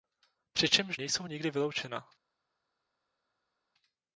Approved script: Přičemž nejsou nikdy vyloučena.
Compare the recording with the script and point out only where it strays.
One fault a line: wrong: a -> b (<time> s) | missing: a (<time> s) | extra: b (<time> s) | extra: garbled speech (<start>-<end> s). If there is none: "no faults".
no faults